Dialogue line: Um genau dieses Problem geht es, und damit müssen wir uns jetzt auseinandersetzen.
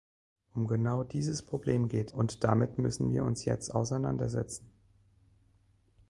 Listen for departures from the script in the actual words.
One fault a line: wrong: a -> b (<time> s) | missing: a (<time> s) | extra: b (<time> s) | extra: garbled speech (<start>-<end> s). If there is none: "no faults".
missing: es (2.1 s)